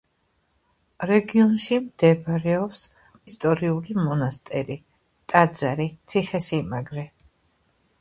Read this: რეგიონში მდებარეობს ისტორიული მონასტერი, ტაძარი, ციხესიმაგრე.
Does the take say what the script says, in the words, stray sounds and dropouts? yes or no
yes